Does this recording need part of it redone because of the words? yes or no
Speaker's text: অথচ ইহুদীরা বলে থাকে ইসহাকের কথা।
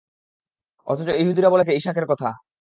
no